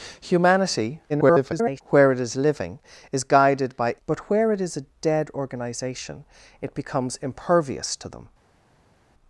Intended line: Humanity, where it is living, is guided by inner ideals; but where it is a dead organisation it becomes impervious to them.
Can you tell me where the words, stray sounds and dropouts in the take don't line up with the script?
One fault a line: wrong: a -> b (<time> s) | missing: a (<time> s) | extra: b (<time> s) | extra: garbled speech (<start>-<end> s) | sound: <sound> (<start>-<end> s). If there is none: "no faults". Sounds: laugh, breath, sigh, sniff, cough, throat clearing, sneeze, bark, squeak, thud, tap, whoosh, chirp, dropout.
extra: garbled speech (1.1-1.8 s)
missing: inner ideals (4.0 s)